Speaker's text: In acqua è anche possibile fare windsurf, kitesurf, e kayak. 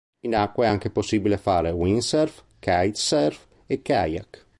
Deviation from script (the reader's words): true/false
false